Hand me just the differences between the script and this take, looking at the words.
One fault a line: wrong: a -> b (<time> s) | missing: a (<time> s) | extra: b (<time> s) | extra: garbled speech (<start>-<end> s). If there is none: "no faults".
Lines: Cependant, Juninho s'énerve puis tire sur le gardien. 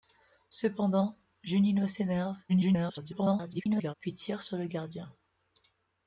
extra: garbled speech (2.5-3.9 s)